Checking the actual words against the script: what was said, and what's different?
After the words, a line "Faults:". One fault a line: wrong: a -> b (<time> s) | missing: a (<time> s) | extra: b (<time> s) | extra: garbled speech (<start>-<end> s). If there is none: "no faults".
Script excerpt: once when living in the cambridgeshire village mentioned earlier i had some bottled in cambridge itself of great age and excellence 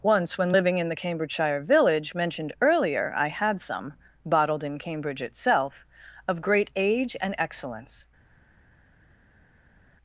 once when living in the cambridgeshire village mentioned earlier i had some bottled in cambridge itself of great age and excellence
Faults:
no faults